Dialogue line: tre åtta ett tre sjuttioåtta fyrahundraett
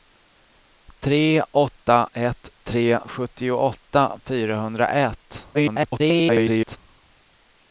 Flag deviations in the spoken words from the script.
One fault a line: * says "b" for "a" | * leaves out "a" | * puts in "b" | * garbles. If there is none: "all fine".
* garbles